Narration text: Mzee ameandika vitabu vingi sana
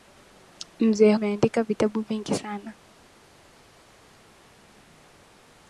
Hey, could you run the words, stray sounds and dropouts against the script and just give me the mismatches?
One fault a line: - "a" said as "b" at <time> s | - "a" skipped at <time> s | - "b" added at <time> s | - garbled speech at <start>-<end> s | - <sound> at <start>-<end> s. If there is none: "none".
none